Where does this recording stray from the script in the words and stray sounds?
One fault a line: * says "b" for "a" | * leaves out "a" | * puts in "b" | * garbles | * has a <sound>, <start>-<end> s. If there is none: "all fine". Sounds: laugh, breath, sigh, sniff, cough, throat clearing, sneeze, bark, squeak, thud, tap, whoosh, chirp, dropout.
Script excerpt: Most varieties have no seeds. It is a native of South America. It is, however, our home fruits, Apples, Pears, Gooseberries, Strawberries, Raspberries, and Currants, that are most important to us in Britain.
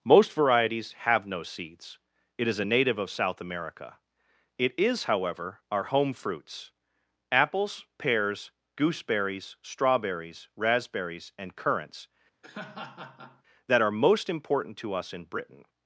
* has a laugh, 12.4-13.4 s